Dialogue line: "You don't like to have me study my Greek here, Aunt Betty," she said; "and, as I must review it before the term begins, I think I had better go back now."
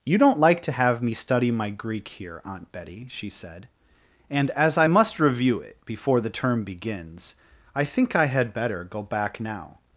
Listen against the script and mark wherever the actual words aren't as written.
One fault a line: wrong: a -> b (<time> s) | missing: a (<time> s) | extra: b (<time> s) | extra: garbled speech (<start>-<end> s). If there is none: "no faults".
no faults